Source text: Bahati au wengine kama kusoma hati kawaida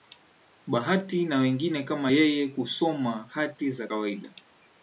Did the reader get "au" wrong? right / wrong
wrong